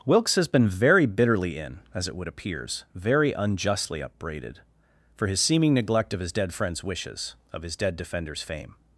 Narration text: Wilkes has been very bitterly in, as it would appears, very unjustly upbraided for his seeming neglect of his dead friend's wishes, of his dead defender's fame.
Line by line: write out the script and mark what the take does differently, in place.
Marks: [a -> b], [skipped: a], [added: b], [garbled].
Wilkes has been very bitterly in, as it would appears, very unjustly upbraided for his seeming neglect of his dead friend's wishes, of his dead defender's fame.